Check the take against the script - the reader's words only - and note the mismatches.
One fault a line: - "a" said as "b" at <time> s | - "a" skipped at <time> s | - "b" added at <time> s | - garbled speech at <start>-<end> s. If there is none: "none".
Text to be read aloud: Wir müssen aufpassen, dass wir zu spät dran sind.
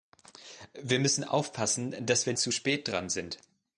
none